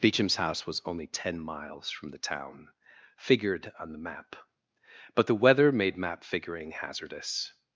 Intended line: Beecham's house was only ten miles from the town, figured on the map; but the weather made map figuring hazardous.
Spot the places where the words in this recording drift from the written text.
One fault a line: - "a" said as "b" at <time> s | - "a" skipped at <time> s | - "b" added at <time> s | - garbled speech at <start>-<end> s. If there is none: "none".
none